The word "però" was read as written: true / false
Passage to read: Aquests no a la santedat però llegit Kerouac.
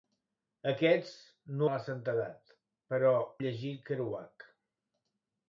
true